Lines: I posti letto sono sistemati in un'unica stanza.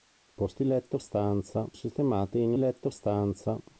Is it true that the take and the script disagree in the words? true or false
true